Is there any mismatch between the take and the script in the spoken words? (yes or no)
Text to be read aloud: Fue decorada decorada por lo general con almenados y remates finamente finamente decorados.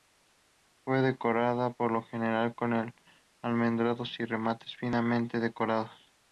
yes